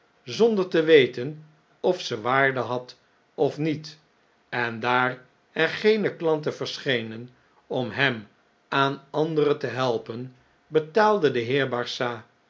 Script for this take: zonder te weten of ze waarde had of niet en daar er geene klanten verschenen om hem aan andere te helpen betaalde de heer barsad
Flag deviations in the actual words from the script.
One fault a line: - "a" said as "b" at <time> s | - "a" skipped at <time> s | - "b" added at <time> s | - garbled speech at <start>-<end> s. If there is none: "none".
none